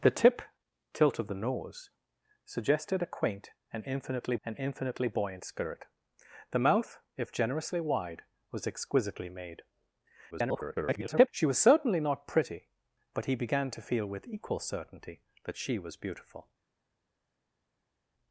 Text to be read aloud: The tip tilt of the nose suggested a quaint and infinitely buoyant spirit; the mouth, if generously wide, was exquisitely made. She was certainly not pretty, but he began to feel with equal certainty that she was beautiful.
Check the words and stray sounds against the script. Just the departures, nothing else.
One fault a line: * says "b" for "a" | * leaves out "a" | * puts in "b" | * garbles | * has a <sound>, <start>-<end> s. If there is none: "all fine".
* puts in "and infinitely"
* garbles